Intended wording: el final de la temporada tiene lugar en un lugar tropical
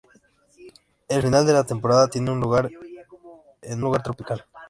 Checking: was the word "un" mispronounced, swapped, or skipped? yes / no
yes